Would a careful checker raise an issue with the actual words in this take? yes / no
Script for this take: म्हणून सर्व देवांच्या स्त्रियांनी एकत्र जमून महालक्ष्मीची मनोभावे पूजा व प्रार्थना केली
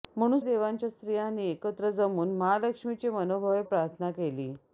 yes